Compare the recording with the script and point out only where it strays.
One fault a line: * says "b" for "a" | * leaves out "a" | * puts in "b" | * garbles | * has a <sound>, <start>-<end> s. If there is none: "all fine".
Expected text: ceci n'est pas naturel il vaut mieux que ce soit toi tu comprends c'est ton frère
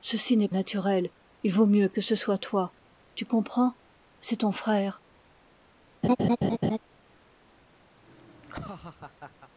* leaves out "pas"
* has a laugh, 6.0-6.8 s
* has a laugh, 8.0-9.5 s